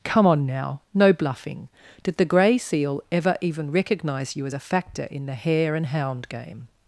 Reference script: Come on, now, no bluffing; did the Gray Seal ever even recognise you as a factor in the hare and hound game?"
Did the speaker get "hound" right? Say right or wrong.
right